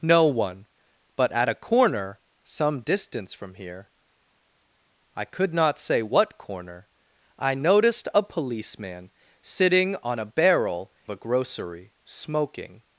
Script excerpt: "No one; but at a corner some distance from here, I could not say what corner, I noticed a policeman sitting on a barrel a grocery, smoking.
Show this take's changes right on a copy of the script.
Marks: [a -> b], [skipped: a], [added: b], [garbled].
"No one; but at a corner some distance from here, I could not say what corner, I noticed a policeman sitting on a barrel a grocery, smoking.